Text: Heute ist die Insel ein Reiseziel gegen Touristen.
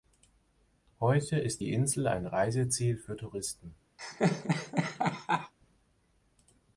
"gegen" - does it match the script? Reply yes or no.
no